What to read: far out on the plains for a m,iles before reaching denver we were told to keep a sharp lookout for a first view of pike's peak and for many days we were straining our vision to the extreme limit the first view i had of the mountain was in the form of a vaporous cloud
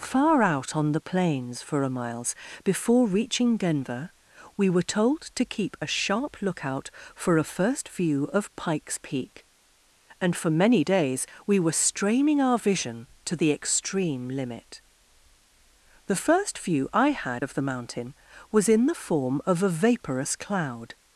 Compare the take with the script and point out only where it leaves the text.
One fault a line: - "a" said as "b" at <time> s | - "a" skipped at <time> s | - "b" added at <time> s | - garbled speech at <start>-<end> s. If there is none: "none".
none